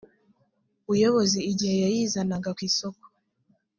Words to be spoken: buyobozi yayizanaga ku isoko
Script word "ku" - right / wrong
right